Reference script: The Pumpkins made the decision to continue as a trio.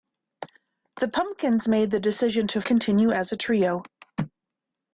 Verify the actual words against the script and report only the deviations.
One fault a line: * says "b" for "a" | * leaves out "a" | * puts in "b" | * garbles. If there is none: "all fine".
all fine